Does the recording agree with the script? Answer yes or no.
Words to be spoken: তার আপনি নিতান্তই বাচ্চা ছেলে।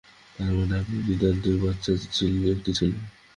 no